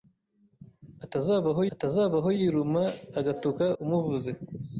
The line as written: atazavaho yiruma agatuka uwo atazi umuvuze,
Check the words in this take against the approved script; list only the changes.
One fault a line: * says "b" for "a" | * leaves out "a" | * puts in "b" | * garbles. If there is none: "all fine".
* puts in "atazavaho"
* leaves out "uwo atazi"